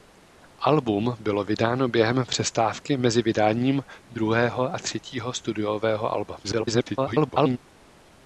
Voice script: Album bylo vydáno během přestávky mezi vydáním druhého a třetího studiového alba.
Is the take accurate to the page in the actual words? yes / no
no